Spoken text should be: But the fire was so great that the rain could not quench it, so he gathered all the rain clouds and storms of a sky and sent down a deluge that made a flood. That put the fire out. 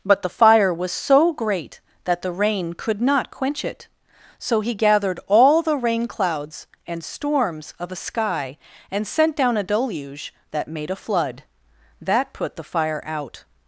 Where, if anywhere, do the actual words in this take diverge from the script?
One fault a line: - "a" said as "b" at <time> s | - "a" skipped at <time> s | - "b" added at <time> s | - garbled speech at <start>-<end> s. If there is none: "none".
none